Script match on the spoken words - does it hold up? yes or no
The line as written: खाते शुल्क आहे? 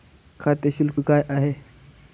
no